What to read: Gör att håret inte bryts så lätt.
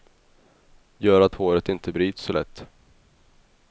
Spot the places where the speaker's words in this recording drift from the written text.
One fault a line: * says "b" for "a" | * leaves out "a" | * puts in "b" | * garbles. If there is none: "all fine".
all fine